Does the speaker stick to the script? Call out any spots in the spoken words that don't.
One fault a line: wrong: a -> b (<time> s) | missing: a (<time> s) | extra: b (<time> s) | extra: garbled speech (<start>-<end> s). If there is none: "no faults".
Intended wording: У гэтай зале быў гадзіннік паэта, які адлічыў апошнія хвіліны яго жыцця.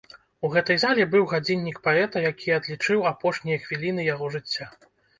no faults